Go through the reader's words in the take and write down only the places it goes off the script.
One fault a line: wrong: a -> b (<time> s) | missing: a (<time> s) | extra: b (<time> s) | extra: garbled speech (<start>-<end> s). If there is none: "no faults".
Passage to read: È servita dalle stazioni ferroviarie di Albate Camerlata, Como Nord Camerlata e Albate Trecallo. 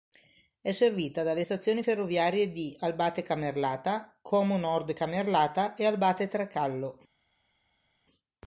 no faults